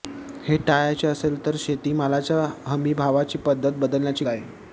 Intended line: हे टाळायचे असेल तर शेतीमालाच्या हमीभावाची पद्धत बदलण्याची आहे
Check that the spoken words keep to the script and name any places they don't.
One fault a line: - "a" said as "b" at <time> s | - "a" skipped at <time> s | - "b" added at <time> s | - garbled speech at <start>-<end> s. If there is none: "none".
none